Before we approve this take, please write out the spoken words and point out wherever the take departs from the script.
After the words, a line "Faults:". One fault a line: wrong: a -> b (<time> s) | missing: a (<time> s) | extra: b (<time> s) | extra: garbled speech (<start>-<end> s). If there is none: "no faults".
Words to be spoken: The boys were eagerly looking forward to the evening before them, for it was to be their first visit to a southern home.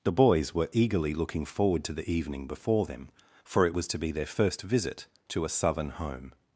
The boys were eagerly looking forward to the evening before them, for it was to be their first visit to a southern home.
Faults:
no faults